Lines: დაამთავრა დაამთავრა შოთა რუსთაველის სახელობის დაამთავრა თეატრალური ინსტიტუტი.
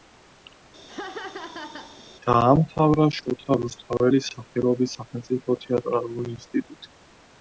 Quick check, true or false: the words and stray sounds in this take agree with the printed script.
false